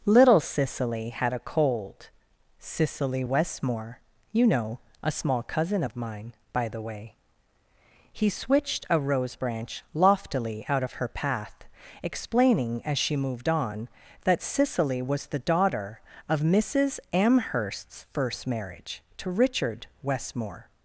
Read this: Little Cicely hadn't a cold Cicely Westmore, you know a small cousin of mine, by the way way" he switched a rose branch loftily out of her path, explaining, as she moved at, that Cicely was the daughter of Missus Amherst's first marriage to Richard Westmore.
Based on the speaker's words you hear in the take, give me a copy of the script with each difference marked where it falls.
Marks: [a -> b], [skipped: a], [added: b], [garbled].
Little Cicely [hadn't -> had] a cold Cicely Westmore, you know a small cousin of mine, by the way [skipped: way"] he switched a rose branch loftily out of her path, explaining, as she moved [at, -> on] that Cicely was the daughter of Missus Amherst's first marriage to Richard Westmore.